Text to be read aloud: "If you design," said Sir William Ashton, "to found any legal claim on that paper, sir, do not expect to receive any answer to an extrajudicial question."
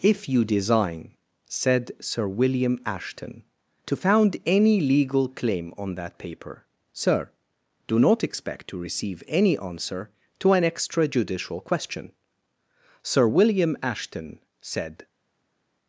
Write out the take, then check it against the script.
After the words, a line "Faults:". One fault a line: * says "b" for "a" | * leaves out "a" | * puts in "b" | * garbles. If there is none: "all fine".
"If you design," said Sir William Ashton, "to found any legal claim on that paper, sir, do not expect to receive any answer to an extrajudicial question." "Sir William Ashton," said
Faults:
* puts in "Sir William Ashton said"